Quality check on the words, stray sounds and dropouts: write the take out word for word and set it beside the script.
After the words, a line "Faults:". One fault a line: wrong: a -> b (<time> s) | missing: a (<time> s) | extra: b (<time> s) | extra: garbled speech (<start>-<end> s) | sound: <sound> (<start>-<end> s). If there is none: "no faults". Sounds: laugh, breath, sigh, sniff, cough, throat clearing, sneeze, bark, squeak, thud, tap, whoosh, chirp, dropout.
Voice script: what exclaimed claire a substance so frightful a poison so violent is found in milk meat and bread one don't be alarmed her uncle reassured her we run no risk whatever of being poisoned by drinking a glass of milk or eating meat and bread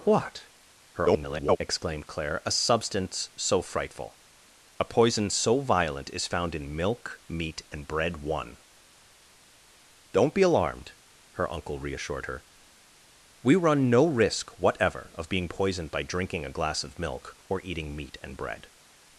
what [garbled] exclaimed claire a substance so frightful a poison so violent is found in milk meat and bread one don't be alarmed her uncle reassured her we run no risk whatever of being poisoned by drinking a glass of milk or eating meat and bread
Faults:
extra: garbled speech (0.9-1.6 s)